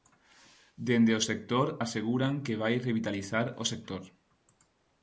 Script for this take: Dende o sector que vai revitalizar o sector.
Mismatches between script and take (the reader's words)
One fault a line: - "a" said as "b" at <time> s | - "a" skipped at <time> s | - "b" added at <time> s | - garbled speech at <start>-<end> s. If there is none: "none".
- "aseguran" added at 1.8 s